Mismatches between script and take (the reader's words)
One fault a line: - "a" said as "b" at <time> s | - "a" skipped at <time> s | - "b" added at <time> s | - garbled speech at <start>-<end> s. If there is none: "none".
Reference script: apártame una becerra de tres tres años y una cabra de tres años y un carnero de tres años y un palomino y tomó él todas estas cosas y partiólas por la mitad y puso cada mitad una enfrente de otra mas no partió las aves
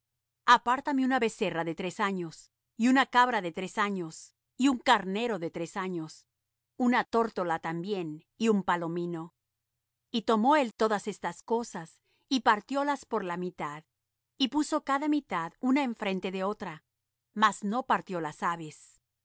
- "tres" skipped at 2.0 s
- "una tórtola también" added at 6.8 s